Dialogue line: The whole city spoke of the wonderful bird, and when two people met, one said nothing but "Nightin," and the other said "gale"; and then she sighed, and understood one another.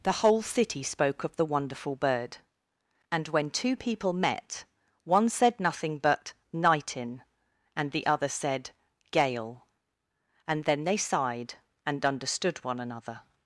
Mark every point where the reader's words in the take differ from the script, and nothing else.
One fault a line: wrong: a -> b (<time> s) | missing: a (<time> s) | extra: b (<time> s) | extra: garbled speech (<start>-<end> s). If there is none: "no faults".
wrong: she -> they (10.8 s)